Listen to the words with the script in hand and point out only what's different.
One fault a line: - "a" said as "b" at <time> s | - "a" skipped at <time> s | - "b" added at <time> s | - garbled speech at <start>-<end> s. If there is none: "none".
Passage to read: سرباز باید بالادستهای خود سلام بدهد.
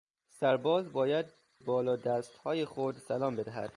none